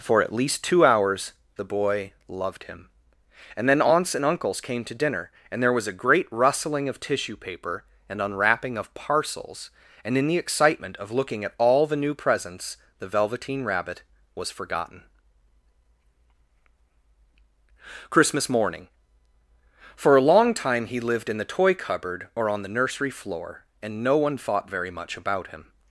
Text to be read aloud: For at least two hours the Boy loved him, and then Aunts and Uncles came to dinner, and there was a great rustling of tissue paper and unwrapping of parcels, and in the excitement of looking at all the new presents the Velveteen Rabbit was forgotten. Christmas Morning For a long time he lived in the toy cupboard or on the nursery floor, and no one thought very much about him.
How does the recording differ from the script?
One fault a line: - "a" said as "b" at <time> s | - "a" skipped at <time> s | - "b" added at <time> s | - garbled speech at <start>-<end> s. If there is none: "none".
none